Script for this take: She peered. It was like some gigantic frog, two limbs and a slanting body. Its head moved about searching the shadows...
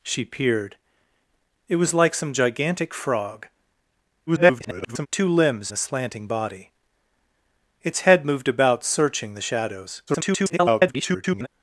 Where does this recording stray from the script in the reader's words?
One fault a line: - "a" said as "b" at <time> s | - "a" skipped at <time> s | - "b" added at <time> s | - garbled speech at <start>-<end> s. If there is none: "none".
- garbled speech at 4.3-5.1 s
- "and" skipped at 5.7 s
- garbled speech at 10.1-11.5 s